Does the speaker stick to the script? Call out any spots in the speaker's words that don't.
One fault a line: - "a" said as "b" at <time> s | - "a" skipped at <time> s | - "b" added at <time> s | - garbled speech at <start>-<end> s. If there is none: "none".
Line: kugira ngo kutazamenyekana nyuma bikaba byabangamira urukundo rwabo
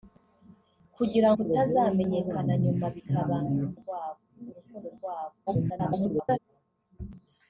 - "ngo" skipped at 1.3 s
- "byabangamira" said as "rwabo" at 3.8 s
- garbled speech at 5.5-6.4 s